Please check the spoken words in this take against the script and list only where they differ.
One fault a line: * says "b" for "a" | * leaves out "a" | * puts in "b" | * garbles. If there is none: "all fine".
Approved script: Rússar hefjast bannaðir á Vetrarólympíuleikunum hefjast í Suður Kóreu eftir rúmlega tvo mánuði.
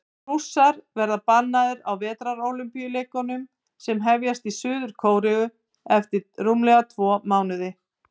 * says "verða" for "hefjast"
* puts in "sem"